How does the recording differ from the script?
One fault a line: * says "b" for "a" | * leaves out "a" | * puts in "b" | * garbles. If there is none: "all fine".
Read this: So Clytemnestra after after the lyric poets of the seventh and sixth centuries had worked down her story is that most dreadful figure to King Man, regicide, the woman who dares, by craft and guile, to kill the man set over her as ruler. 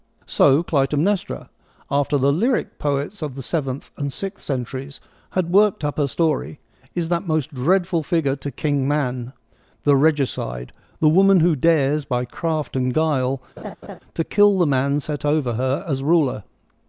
* leaves out "after"
* says "up" for "down"
* puts in "the"